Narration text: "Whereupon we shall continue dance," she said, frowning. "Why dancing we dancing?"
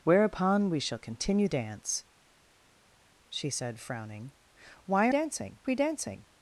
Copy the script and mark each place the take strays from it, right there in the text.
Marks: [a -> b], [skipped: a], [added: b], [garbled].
"Whereupon we shall continue dance," she said, frowning. "Why dancing we dancing?"